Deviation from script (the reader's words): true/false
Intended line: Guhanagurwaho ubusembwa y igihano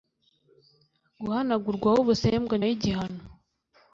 false